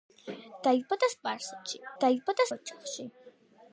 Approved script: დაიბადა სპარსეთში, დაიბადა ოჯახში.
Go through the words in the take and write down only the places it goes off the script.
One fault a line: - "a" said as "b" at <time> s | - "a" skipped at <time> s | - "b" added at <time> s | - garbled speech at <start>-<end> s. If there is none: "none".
none